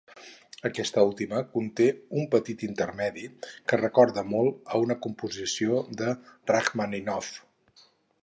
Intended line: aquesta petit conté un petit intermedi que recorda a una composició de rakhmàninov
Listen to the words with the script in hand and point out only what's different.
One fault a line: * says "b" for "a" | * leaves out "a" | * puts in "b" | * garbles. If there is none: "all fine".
* says "última" for "petit"
* puts in "molt"